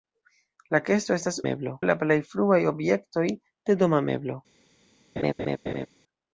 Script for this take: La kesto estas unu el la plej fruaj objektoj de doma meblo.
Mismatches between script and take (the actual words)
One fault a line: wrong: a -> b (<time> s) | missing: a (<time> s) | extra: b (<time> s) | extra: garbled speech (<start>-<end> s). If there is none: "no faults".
wrong: unu -> meblo (1.5 s)